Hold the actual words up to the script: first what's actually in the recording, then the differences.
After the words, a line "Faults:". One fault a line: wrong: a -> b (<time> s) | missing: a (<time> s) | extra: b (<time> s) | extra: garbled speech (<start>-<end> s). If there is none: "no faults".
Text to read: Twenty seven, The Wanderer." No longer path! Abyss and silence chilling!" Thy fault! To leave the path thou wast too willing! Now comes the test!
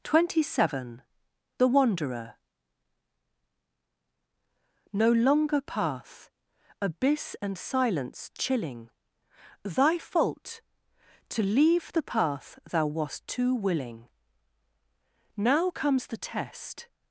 Twenty seven, The Wanderer." No longer path! Abyss and silence chilling!" Thy fault! To leave the path thou wast too willing! Now comes the test!
Faults:
no faults